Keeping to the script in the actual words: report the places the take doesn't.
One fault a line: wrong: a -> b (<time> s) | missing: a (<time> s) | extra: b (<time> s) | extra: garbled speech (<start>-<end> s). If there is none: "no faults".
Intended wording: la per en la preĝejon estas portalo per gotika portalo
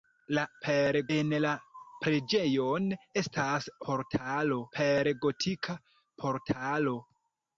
no faults